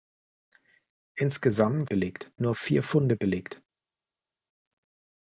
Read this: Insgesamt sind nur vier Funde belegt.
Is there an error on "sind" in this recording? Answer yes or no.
yes